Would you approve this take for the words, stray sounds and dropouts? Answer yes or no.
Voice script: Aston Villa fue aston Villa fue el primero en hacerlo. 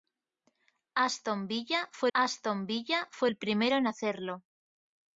yes